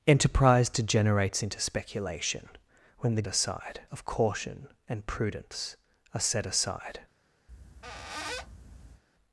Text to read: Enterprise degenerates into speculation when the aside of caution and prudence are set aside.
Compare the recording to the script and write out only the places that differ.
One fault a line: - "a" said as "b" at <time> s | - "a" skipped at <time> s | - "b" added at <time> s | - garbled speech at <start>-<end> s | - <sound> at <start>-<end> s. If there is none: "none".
- squeak at 7.5-9.0 s